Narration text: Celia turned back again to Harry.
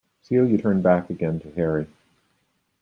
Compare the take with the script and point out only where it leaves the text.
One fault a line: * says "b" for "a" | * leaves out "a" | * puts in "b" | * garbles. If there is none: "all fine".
all fine